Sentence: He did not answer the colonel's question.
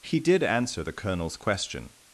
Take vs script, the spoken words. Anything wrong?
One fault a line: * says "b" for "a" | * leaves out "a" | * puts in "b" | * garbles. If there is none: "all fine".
* leaves out "not"